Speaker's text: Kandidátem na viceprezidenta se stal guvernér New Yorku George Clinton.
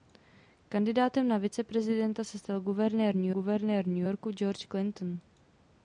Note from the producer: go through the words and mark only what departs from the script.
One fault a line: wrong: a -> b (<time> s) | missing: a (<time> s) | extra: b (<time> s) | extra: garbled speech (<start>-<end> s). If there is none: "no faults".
extra: guvernér New (3.3 s)